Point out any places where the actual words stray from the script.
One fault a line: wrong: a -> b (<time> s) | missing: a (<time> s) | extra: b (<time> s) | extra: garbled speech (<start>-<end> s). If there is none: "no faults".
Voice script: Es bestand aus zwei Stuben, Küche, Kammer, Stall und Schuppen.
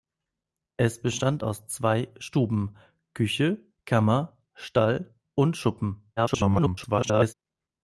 extra: garbled speech (6.2-7.3 s)